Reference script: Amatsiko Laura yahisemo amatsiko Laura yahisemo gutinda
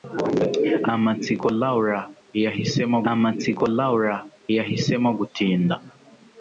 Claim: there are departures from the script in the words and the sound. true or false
false